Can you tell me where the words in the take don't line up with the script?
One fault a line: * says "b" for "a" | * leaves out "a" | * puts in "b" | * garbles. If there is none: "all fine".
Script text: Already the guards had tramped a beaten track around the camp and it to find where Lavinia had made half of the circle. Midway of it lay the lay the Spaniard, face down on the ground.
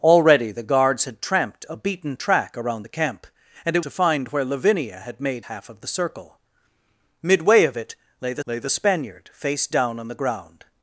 all fine